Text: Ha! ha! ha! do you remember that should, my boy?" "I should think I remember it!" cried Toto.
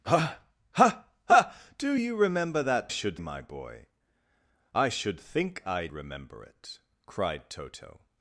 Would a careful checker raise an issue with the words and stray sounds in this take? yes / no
no